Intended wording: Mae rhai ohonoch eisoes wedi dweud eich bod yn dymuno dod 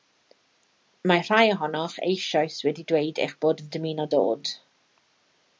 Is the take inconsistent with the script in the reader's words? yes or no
no